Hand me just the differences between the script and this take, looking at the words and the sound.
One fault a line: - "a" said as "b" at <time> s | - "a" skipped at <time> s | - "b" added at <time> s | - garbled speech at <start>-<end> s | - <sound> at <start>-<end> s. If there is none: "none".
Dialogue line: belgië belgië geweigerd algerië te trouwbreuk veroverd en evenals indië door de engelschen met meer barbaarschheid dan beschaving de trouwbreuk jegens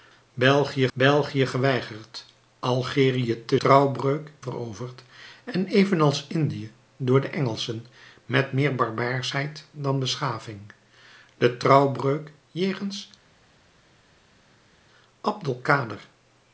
none